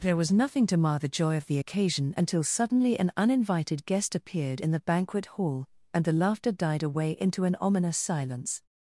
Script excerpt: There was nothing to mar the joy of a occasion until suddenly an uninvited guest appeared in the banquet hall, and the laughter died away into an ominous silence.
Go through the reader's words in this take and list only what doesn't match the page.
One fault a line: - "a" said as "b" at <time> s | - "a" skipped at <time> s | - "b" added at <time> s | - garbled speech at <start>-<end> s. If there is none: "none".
- "a" said as "the" at 1.4 s